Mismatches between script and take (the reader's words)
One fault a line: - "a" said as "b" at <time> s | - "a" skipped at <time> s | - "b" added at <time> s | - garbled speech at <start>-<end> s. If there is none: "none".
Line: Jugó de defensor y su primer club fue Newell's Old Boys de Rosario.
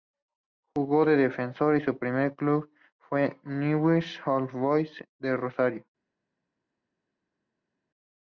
none